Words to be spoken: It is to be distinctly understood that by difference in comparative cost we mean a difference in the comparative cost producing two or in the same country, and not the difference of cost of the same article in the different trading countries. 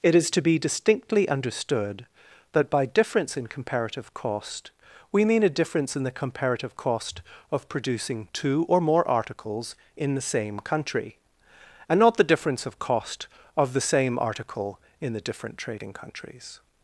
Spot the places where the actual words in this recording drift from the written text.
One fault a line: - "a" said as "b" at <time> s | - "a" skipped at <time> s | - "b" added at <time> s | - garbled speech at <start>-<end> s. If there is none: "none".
- "of" added at 7.5 s
- "more articles" added at 8.8 s